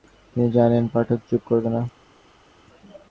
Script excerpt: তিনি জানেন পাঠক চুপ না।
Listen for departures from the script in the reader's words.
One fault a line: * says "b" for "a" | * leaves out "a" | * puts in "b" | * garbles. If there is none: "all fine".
* puts in "করবে"